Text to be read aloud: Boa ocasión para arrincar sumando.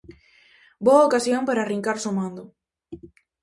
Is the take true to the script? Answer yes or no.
yes